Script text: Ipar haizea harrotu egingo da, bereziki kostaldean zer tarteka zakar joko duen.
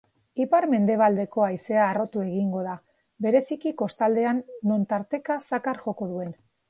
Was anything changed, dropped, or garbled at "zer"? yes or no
yes